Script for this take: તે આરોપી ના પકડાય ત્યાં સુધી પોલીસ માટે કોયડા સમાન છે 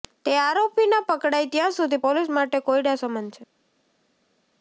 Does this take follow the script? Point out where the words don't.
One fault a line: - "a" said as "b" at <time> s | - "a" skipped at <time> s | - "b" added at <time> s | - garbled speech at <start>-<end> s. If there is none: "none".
none